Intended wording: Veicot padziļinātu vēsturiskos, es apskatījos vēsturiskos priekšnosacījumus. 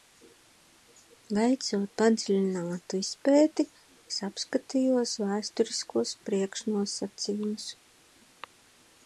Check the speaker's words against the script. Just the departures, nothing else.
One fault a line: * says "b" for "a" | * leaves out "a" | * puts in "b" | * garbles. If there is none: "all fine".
* says "izpēti" for "vēsturiskos"